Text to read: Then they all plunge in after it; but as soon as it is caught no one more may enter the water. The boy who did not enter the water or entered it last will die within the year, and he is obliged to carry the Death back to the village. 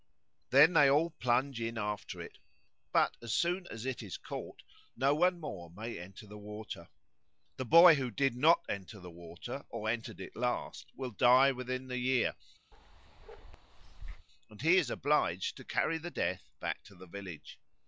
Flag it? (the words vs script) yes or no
no